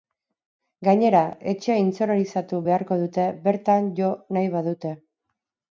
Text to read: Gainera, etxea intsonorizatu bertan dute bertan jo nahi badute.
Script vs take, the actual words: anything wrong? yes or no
yes